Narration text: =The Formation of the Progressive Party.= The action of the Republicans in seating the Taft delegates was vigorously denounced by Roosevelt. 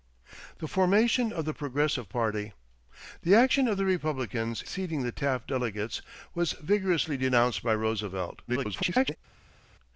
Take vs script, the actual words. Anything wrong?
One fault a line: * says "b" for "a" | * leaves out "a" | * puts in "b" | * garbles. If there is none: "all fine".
* leaves out "in"
* garbles